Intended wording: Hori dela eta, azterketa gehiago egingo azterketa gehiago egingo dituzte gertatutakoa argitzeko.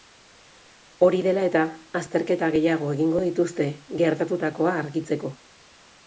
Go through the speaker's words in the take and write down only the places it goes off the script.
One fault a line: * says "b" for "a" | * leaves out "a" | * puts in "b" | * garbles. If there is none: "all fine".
* leaves out "azterketa gehiago egingo"